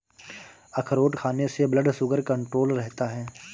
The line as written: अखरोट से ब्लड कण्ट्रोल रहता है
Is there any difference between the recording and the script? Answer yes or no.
yes